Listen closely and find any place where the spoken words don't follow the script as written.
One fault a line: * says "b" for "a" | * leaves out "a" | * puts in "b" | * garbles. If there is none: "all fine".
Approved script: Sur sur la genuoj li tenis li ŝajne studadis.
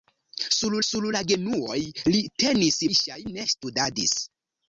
all fine